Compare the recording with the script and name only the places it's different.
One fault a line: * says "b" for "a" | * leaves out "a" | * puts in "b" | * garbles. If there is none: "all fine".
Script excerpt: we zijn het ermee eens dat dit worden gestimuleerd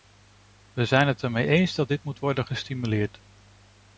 * puts in "moet"